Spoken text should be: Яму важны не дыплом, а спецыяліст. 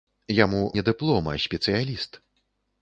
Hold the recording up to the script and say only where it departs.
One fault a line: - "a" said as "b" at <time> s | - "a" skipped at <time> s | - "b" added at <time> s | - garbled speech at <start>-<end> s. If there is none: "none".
- "важны" skipped at 0.6 s